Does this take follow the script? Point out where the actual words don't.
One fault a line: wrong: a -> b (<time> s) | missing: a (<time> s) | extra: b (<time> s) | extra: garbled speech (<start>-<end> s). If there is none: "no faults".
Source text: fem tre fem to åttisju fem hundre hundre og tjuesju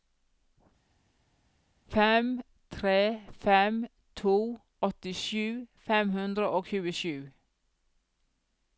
missing: hundre (6.5 s)